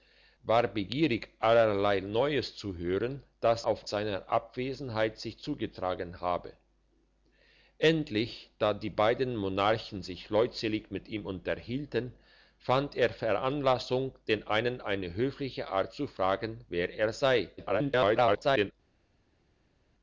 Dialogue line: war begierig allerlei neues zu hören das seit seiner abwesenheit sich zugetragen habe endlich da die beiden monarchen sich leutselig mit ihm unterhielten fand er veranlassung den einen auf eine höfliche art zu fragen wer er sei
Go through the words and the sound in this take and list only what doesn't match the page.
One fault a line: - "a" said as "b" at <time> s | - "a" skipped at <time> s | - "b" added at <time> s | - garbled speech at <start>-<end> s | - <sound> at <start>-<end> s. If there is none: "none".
- "seit" said as "auf" at 3.6 s
- "auf" skipped at 14.8 s
- garbled speech at 17.6-18.7 s